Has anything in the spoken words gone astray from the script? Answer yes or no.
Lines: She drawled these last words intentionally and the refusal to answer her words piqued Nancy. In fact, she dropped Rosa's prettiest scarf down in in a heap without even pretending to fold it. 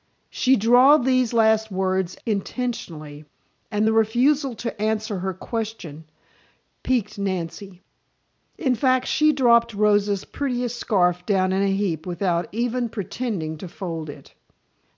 yes